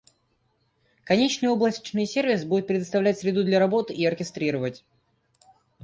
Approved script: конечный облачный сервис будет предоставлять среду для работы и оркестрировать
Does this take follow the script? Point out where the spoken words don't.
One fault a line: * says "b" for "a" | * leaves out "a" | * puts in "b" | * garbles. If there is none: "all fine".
all fine